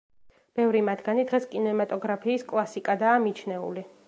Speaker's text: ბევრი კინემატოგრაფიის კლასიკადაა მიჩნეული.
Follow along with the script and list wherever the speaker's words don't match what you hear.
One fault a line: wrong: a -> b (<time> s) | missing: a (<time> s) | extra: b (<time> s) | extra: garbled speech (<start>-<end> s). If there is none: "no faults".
extra: მათგანი დღეს (0.9 s)